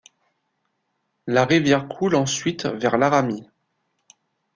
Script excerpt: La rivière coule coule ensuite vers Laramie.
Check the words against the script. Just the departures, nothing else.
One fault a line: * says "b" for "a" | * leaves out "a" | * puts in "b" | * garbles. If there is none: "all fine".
* leaves out "coule"